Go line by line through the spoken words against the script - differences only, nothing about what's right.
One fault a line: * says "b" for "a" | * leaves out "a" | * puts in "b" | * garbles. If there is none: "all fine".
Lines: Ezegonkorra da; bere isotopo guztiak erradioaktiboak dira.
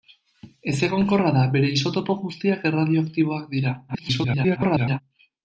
* garbles